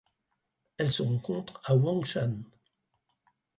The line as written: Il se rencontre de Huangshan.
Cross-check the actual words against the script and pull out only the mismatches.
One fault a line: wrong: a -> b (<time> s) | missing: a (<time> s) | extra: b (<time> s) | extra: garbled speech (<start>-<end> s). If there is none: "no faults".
wrong: Il -> Elle (0.8 s)
wrong: de -> à (1.6 s)